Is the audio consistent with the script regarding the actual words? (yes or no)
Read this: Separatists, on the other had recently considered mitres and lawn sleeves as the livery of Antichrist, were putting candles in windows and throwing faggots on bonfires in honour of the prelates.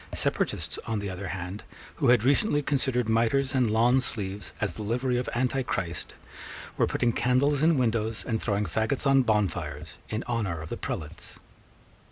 no